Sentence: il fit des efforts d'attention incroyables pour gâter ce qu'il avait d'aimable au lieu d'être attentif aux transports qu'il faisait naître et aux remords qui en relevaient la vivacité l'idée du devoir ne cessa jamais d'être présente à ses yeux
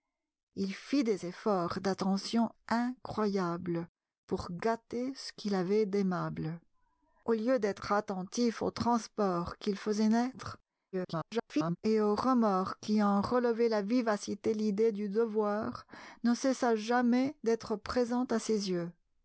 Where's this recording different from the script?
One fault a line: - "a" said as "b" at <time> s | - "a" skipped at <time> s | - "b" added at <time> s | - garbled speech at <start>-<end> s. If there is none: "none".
- garbled speech at 10.9-11.8 s